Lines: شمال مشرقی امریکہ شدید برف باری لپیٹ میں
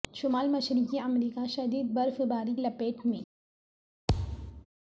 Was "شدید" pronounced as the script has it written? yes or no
yes